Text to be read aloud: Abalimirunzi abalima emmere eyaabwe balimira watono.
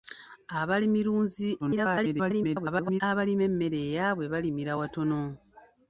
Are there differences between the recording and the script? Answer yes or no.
yes